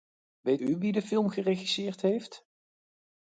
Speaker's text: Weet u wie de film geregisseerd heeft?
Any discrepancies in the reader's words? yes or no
no